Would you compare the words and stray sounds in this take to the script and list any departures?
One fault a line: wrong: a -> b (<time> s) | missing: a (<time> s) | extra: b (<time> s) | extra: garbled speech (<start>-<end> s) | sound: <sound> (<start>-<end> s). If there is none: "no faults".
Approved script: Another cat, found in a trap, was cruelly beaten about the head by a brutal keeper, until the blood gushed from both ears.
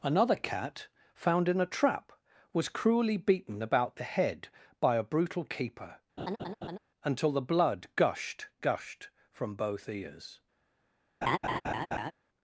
sound: laugh (6.2-6.8 s)
extra: gushed (8.6 s)
sound: laugh (11.2-12.1 s)